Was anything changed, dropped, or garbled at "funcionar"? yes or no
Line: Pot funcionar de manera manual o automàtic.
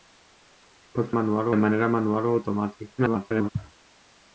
yes